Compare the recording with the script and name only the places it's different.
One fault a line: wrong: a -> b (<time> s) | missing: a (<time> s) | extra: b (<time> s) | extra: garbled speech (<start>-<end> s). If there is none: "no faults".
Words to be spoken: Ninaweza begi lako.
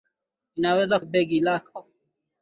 no faults